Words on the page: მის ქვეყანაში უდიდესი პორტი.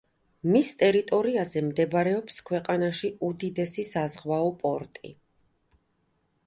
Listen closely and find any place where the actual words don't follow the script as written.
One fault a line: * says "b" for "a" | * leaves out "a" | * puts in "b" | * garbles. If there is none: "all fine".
* puts in "ტერიტორიაზე მდებარეობს"
* puts in "საზღვაო"